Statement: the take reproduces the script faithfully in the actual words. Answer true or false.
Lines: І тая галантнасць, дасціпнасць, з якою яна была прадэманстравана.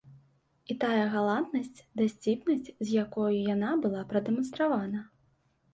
true